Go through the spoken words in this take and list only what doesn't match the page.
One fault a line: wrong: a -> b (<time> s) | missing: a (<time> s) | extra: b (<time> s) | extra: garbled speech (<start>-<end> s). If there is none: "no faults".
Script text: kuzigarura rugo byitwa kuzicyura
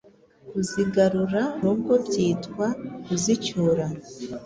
no faults